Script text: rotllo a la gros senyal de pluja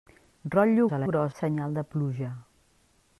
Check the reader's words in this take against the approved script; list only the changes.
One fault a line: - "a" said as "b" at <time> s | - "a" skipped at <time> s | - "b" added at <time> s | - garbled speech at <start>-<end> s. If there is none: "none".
none